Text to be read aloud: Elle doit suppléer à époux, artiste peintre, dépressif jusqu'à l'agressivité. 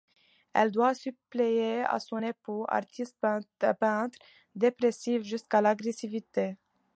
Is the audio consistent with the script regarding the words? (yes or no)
no